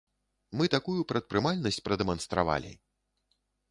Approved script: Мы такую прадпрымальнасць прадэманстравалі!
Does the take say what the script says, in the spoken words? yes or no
yes